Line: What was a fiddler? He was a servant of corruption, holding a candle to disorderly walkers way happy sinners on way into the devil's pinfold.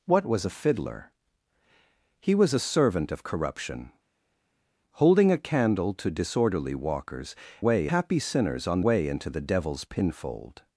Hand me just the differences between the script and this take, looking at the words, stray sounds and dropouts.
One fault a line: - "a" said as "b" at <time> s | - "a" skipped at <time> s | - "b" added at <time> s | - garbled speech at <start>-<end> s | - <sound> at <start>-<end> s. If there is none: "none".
none